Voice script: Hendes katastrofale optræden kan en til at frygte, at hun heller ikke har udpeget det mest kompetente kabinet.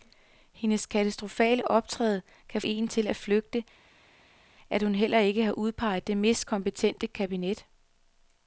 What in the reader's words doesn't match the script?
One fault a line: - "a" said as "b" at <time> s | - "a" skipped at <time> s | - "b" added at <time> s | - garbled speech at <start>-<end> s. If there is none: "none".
none